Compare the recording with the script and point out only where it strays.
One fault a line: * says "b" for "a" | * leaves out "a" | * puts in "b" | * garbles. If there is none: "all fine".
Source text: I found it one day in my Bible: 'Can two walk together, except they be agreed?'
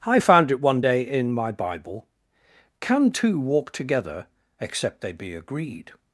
all fine